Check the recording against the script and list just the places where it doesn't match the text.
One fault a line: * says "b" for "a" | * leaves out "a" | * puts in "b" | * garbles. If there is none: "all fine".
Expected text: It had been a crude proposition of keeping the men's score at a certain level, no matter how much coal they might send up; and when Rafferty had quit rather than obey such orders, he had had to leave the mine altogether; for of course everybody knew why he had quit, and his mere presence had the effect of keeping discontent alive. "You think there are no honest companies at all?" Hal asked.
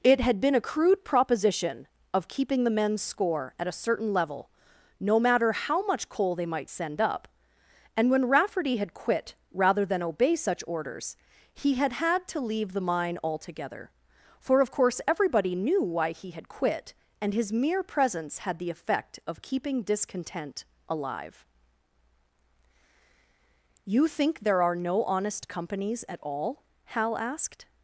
all fine